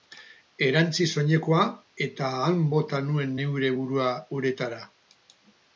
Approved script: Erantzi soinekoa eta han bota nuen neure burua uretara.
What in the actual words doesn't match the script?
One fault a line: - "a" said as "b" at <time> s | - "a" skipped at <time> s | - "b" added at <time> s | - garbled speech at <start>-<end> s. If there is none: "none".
none